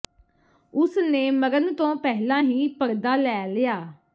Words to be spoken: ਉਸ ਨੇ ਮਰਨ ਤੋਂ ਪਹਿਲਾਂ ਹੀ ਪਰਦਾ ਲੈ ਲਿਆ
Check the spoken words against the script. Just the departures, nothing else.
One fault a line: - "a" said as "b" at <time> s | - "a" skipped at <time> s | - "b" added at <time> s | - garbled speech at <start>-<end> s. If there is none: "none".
none